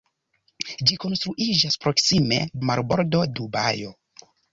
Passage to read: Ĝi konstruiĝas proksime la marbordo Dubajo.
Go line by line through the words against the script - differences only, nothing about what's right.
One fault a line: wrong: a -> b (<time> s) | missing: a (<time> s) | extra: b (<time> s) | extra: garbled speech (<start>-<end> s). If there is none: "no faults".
no faults